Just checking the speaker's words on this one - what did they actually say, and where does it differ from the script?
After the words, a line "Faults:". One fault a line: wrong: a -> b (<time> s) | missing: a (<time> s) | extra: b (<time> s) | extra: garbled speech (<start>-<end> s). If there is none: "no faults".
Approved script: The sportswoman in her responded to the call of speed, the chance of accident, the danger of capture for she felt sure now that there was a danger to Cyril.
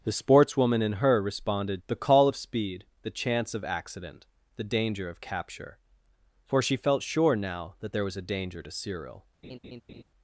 The sportswoman in her responded the call of speed, the chance of accident, the danger of capture for she felt sure now that there was a danger to Cyril.
Faults:
missing: to (1.8 s)